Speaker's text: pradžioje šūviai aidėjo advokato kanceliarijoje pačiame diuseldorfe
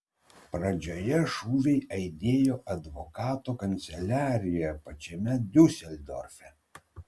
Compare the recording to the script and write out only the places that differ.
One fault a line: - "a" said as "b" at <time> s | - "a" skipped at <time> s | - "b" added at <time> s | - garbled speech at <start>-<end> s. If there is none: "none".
none